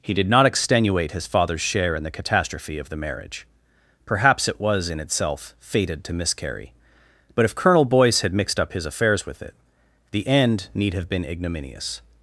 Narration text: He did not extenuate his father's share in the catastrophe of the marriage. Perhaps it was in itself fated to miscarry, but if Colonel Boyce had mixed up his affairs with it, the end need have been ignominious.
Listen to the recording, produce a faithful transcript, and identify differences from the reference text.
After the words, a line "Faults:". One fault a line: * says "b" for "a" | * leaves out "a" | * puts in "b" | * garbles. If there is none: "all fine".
He did not extenuate his father's share in the catastrophe of the marriage. Perhaps it was in itself fated to miscarry, but if Colonel Boyce had mixed up his affairs with it, the end need have been ignominious.
Faults:
all fine